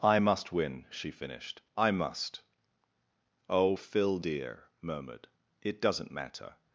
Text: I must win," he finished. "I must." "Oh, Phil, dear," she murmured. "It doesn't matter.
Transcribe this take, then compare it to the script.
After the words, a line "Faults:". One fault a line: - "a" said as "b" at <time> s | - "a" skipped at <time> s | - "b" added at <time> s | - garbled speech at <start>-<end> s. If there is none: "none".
I must win," she finished. "I must." "Oh, Phil, dear," murmured. "It doesn't matter.
Faults:
- "he" said as "she" at 0.9 s
- "she" skipped at 4.6 s